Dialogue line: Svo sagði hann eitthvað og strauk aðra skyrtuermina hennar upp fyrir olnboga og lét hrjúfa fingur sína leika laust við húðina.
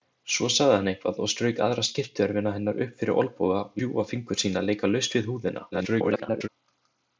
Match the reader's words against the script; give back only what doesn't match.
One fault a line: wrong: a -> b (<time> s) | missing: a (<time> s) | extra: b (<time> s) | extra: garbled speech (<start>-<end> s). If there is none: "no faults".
missing: lét (3.8 s)
extra: garbled speech (5.7-6.5 s)